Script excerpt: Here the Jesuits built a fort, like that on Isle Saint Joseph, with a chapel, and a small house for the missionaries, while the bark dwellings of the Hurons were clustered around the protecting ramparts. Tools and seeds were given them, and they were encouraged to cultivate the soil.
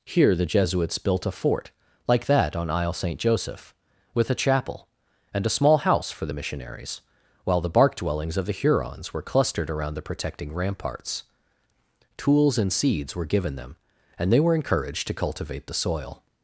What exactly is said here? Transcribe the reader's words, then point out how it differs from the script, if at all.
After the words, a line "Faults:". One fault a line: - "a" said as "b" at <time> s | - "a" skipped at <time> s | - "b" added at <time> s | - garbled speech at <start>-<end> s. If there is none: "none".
Here the Jesuits built a fort, like that on Isle Saint Joseph, with a chapel, and a small house for the missionaries, while the bark dwellings of the Hurons were clustered around the protecting ramparts. Tools and seeds were given them, and they were encouraged to cultivate the soil.
Faults:
none